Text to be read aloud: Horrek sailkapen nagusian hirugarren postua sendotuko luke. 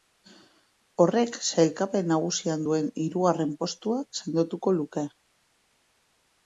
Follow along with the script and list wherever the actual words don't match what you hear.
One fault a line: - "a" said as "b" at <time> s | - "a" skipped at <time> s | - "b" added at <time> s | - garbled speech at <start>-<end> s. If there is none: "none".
- "duen" added at 2.7 s